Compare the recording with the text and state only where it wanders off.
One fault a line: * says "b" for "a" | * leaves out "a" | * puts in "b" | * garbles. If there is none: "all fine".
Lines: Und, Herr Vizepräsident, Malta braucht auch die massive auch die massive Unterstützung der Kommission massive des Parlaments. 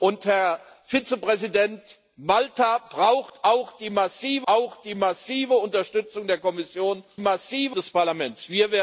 all fine